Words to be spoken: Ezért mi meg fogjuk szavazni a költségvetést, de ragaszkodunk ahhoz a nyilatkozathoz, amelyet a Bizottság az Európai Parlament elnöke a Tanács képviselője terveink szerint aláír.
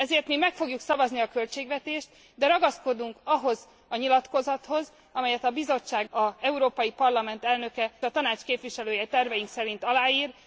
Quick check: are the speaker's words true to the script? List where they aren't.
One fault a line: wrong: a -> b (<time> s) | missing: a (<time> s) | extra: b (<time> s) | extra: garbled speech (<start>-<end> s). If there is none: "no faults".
no faults